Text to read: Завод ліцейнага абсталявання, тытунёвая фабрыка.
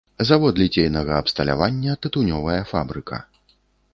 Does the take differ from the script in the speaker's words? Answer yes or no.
no